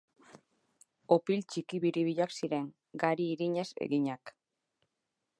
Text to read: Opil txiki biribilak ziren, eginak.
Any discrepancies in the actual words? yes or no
yes